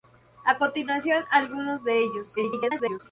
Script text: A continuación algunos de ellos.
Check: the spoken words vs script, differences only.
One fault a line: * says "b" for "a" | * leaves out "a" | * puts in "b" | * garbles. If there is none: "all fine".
* garbles